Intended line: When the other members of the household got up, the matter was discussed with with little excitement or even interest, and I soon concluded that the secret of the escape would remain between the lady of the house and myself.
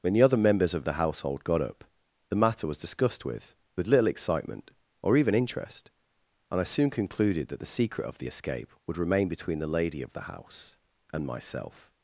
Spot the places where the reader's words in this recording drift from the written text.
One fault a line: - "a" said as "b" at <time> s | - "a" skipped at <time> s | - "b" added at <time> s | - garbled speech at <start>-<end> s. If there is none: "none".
none